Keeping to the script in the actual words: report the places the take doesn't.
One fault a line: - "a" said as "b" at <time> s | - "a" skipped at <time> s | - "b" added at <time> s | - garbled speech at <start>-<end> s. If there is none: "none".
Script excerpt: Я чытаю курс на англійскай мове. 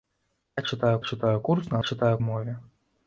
- "чытаю" added at 1.0 s
- "англійскай" said as "чытаю" at 1.8 s